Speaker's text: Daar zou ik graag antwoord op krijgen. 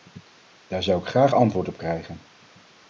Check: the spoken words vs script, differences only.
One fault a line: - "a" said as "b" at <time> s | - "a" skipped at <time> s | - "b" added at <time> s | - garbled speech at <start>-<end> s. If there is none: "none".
none